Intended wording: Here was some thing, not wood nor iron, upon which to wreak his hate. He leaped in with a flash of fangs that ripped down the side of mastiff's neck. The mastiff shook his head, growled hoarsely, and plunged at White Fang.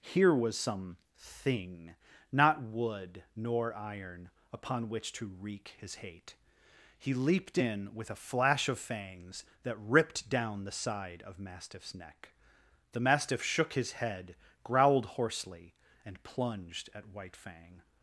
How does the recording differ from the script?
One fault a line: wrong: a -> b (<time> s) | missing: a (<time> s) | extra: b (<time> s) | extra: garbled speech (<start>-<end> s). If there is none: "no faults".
no faults